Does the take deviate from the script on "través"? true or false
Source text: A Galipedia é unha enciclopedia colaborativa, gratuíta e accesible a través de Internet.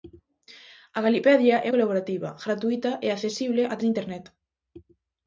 true